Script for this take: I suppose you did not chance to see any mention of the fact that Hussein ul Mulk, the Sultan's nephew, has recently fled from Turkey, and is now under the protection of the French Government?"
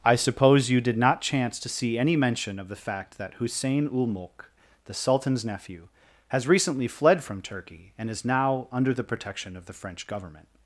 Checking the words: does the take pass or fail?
pass